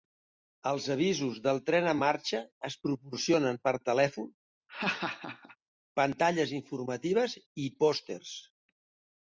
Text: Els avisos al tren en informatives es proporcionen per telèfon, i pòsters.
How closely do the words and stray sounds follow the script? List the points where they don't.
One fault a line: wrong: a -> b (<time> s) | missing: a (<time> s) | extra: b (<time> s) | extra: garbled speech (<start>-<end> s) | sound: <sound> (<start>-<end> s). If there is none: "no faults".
wrong: al -> del (1.5 s)
wrong: informatives -> marxa (2.0 s)
sound: laugh (4.7-5.6 s)
extra: pantalles informatives (6.0 s)